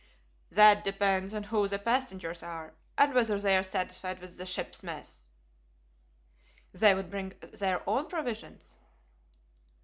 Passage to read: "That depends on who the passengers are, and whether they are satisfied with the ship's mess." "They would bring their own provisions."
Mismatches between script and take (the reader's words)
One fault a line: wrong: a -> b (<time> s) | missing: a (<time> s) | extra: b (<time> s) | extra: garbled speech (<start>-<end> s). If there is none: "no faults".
no faults